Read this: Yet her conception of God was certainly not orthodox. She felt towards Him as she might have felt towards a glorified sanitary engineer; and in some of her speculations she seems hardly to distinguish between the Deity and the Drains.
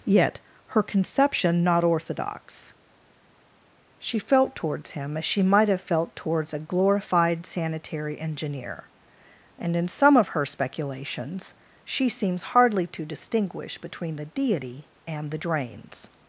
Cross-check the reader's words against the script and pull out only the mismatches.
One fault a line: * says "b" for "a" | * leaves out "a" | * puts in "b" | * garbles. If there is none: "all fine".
* leaves out "of God was certainly"